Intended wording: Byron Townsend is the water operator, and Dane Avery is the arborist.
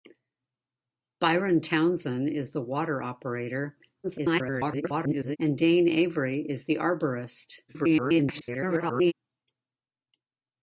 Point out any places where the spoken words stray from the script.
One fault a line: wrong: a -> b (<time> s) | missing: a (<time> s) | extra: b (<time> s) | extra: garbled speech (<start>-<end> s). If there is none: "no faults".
extra: garbled speech (4.0-5.4 s)
extra: garbled speech (7.7-9.1 s)